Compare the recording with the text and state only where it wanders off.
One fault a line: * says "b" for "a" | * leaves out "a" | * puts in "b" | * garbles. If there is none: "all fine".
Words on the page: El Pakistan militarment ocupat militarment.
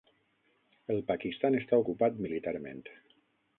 * says "està" for "militarment"